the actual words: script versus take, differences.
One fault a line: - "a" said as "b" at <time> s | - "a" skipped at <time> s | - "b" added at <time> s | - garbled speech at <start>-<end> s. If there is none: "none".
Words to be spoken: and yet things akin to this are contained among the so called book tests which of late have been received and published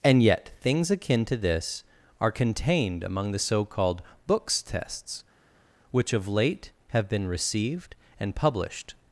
- "book" said as "books" at 4.3 s